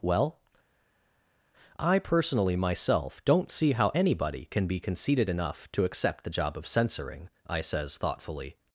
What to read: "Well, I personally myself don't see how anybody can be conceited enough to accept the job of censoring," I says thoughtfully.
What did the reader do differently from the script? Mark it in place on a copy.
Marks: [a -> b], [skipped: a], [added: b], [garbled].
"Well, I personally myself don't see how anybody can be conceited enough to accept the job of censoring," I says thoughtfully.